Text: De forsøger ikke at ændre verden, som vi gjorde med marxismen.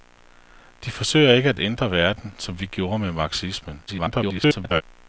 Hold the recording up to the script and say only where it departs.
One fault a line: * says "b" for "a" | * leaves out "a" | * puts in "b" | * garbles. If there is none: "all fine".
* garbles